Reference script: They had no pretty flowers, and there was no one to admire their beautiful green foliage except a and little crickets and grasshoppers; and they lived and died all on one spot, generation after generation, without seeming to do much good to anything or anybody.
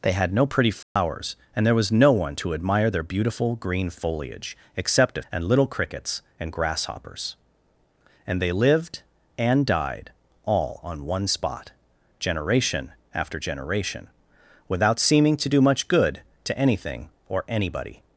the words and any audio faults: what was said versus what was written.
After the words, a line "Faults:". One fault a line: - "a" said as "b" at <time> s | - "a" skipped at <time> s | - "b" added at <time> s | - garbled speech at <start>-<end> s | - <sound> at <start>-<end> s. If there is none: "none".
They had no pretty flowers, and there was no one to admire their beautiful green foliage except a and little crickets and grasshoppers; and they lived and died all on one spot, generation after generation, without seeming to do much good to anything or anybody.
Faults:
- dropout at 0.8-1.0 s